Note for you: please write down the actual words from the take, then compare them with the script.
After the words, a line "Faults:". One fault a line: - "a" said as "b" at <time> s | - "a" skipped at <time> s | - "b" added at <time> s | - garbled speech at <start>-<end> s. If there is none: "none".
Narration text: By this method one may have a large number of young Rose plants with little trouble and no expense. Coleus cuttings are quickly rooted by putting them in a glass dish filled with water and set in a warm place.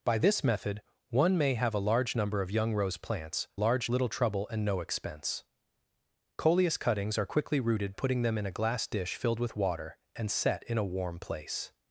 By this method one may have a large number of young Rose plants large little trouble and no expense. Coleus cuttings are quickly rooted putting them in a glass dish filled with water and set in a warm place.
Faults:
- "with" said as "large" at 3.6 s
- "by" skipped at 7.9 s